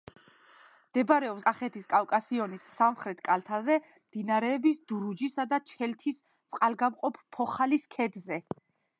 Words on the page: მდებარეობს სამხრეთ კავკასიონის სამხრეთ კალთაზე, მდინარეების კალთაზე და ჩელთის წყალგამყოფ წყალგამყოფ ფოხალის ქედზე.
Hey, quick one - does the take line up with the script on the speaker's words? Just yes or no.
no